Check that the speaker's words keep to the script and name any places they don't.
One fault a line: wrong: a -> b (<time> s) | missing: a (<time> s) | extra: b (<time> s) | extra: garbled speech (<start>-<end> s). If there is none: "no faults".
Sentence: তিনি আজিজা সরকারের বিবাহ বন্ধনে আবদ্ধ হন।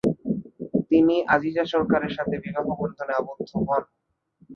extra: সাথে (2.2 s)